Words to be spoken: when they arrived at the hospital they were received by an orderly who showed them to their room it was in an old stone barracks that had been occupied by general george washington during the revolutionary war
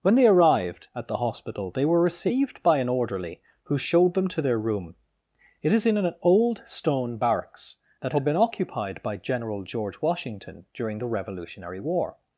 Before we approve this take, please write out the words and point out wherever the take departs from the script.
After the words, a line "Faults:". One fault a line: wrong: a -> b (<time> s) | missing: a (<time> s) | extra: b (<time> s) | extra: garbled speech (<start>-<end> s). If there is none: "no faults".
when they arrived at the hospital they were received by an orderly who showed them to their room it is in an old stone barracks that had been occupied by general george washington during the revolutionary war
Faults:
wrong: was -> is (5.7 s)